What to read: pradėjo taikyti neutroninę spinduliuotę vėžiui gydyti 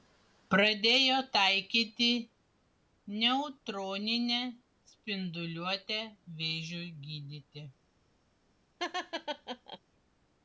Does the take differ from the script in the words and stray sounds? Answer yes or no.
yes